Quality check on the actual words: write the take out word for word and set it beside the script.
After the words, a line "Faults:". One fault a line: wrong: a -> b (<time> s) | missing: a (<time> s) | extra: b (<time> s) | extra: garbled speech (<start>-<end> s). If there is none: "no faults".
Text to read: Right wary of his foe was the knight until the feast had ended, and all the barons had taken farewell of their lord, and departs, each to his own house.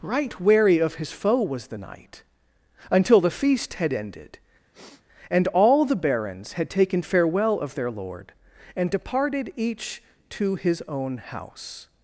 Right wary of his foe was the knight until the feast had ended, and all the barons had taken farewell of their lord, and departed, each to his own house.
Faults:
wrong: departs -> departed (8.9 s)